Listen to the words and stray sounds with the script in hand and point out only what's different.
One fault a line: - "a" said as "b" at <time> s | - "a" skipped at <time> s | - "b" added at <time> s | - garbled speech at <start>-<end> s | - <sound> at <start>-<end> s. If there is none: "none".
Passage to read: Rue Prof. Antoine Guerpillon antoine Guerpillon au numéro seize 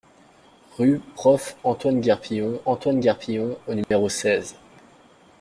- dropout at 3.8-3.9 s